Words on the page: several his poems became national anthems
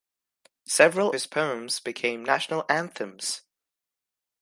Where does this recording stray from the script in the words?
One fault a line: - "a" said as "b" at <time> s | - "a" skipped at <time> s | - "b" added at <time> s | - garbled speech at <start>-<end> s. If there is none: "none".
none